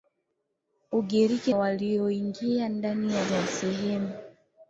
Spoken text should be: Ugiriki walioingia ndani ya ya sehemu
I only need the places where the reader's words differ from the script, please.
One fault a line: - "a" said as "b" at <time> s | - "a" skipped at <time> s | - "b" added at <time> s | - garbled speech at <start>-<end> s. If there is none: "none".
none